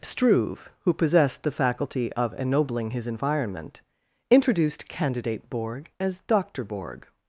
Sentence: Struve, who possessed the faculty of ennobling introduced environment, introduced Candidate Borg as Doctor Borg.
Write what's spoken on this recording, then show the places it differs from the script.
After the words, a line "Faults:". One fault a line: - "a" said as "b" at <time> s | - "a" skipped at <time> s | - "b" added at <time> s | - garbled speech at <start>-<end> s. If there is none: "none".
Struve, who possessed the faculty of ennobling his environment, introduced Candidate Borg as Doctor Borg.
Faults:
- "introduced" said as "his" at 2.9 s